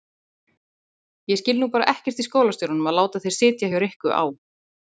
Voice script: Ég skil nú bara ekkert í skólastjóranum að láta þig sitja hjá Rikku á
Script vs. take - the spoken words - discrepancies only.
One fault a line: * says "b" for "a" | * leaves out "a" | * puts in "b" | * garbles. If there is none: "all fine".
all fine